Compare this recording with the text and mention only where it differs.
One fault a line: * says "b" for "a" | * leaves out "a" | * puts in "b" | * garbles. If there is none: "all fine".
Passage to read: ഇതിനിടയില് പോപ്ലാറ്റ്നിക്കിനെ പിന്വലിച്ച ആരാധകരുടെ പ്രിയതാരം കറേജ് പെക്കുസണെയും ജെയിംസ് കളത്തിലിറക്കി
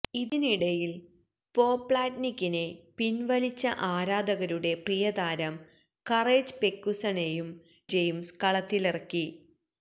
all fine